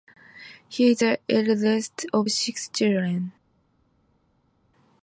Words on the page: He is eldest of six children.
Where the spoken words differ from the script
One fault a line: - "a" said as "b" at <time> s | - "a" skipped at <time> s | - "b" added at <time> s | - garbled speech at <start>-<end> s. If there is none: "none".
- "the" added at 1.0 s